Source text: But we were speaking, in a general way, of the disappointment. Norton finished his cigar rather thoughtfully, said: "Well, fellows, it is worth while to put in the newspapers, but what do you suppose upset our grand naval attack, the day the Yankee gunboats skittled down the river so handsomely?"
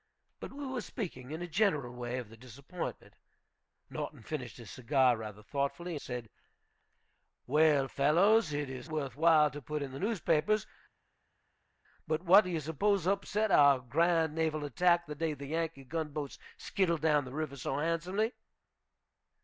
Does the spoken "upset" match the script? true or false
true